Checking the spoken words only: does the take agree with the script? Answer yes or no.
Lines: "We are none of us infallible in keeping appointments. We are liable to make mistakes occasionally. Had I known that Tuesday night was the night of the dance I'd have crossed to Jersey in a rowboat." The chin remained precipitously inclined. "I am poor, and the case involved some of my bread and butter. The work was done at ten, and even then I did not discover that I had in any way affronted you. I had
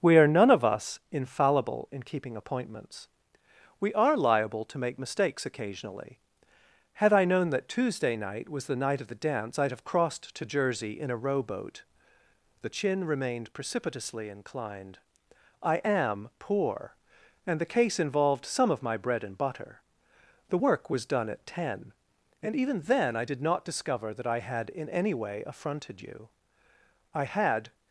yes